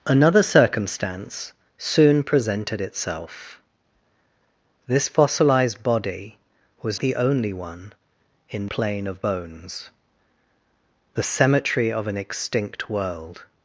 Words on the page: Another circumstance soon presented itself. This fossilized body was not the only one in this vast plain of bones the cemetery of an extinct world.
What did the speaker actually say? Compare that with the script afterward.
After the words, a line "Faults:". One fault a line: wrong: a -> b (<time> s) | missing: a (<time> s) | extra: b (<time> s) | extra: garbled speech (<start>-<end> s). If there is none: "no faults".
Another circumstance soon presented itself. This fossilized body was the only one in plain of bones the cemetery of an extinct world.
Faults:
missing: not (7.0 s)
missing: this vast (8.7 s)